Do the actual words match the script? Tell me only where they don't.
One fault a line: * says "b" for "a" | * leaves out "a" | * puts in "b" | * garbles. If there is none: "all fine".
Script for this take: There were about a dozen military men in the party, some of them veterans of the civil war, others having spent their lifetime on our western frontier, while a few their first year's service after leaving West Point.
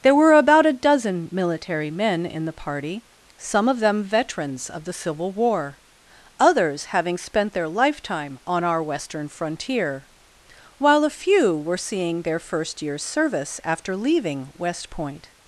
* puts in "were seeing"